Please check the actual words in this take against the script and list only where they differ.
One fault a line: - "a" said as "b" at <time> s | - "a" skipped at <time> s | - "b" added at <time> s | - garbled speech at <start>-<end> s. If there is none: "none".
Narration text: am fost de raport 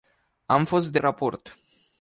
none